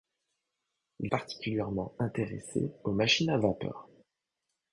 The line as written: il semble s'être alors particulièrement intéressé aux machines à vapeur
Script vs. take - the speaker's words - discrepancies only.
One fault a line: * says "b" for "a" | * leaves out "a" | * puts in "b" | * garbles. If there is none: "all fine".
* leaves out "semble s'être alors"